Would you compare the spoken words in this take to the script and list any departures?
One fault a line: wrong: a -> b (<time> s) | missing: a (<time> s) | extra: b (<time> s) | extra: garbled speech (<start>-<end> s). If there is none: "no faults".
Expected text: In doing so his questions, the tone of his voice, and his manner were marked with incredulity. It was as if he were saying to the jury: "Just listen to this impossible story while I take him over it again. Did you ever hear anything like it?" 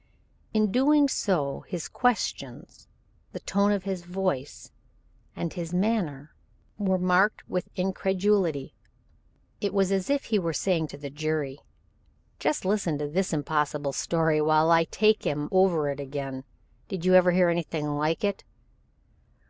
no faults